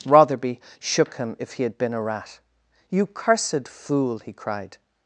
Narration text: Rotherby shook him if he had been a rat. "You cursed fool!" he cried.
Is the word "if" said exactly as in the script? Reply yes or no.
yes